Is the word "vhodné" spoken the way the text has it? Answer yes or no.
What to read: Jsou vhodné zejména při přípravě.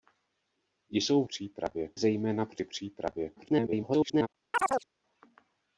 no